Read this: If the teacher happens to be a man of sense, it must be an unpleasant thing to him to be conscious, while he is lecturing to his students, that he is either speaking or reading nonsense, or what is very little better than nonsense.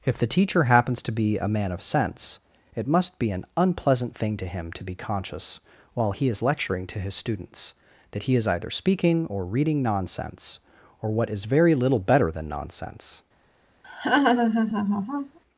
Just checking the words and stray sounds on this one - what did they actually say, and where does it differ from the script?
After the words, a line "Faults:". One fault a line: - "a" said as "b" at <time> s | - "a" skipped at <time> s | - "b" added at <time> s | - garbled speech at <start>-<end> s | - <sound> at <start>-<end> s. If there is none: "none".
If the teacher happens to be a man of sense, it must be an unpleasant thing to him to be conscious, while he is lecturing to his students, that he is either speaking or reading nonsense, or what is very little better than nonsense.
Faults:
- laugh at 13.8-15.4 s